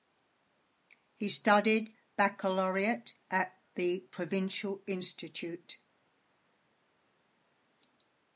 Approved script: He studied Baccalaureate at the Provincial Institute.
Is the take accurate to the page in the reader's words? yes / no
yes